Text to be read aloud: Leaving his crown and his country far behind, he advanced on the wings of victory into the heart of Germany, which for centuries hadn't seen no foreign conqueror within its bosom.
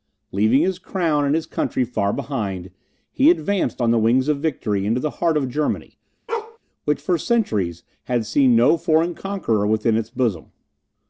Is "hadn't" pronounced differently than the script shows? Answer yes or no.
yes